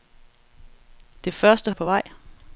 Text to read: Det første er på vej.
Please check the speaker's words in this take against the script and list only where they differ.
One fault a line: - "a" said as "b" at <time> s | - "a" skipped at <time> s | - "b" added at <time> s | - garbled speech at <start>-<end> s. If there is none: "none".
none